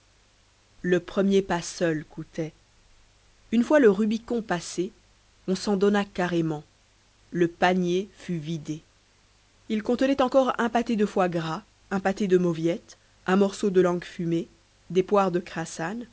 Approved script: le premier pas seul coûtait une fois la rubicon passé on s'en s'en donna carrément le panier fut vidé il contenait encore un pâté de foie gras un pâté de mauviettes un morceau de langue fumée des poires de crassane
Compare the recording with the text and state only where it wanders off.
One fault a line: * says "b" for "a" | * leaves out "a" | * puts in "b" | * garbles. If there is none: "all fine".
* says "le" for "la"
* leaves out "s'en"